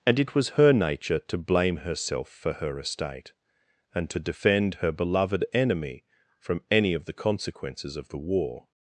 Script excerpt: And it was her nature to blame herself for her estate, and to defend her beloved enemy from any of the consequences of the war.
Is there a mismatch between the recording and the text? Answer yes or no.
no